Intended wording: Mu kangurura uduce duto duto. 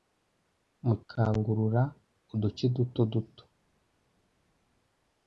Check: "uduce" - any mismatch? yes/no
no